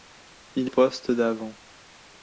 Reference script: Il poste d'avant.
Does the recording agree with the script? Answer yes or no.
yes